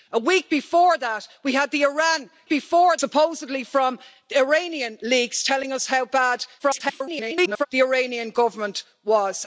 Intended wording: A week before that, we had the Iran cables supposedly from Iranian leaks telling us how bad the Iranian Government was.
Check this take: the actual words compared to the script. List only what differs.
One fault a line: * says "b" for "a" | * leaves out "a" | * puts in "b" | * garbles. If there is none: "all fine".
* says "before" for "cables"
* garbles